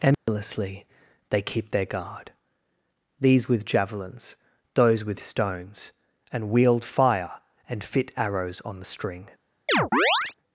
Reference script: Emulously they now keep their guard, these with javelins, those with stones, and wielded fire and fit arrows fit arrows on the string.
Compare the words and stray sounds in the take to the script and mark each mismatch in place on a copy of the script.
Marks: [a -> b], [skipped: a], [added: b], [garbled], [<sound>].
Emulously [dropout] they [skipped: now] keep their guard, these with javelins, those with stones, and [wielded -> wield] fire and fit arrows [skipped: fit arrows] on the string. [chirp]